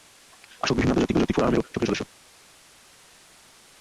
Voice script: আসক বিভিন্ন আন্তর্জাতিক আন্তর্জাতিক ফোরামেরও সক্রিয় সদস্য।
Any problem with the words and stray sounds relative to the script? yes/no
no